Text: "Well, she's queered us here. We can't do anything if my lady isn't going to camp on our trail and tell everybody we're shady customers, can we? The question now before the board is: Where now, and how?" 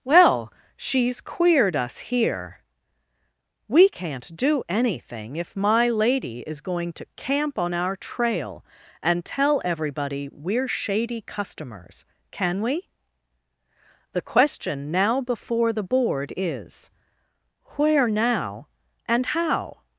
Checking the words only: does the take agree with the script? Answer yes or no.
no